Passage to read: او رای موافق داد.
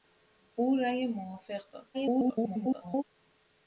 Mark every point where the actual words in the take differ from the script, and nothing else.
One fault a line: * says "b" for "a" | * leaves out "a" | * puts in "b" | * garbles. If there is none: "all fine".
* garbles